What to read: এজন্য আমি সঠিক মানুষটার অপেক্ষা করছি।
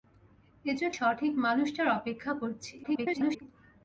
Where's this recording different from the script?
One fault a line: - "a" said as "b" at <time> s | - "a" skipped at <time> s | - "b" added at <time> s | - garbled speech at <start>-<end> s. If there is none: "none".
- "আমি" skipped at 0.9 s
- garbled speech at 2.8-3.4 s